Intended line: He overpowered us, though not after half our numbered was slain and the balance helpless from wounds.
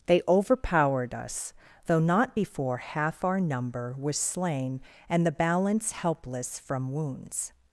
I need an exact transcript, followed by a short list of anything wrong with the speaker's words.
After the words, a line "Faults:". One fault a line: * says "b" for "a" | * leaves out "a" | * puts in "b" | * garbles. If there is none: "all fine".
They overpowered us, though not before half our number was slain and the balance helpless from wounds.
Faults:
* says "They" for "He"
* says "before" for "after"
* says "number" for "numbered"